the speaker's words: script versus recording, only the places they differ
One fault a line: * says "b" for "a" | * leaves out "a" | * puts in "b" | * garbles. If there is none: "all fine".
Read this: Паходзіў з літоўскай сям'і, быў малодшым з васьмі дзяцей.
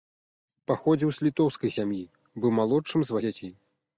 * leaves out "васьмі"